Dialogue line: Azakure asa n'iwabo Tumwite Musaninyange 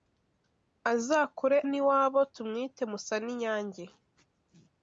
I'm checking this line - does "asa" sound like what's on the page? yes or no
no